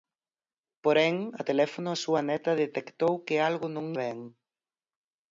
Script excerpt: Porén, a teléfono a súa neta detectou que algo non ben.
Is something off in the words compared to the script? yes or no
no